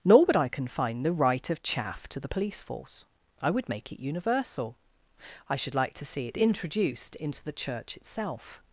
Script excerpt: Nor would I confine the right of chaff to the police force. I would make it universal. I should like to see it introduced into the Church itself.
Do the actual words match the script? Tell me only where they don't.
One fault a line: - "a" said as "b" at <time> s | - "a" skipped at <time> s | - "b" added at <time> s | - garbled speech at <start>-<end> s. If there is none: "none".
none